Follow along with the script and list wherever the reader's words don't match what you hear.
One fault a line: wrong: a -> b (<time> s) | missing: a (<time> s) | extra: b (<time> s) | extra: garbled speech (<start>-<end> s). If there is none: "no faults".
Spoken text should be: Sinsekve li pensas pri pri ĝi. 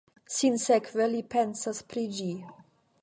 missing: pri (2.1 s)